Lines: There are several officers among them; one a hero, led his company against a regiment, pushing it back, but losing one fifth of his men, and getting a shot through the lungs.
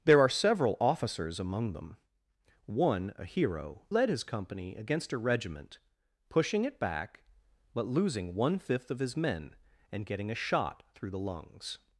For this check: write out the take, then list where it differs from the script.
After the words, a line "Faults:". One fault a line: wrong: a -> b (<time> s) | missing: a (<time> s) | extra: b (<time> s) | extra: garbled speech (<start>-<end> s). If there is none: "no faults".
There are several officers among them; one a hero, led his company against a regiment, pushing it back, but losing one fifth of his men, and getting a shot through the lungs.
Faults:
no faults